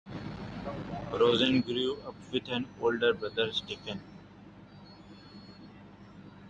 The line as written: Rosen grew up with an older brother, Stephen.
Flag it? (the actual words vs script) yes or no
no